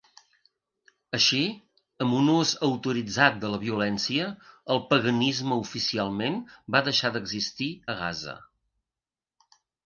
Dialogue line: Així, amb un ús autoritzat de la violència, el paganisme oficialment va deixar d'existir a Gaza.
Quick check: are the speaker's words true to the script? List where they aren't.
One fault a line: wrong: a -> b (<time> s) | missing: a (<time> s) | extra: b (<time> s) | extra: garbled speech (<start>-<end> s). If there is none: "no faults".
no faults